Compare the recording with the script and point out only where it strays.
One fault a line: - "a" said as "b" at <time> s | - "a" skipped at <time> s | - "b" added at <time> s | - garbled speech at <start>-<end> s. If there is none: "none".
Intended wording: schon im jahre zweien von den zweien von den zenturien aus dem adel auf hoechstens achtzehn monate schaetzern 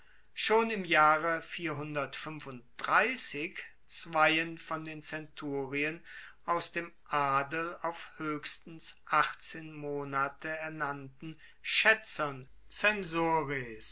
- "zweien von den" skipped at 5.0 s
- "ernannten" added at 10.5 s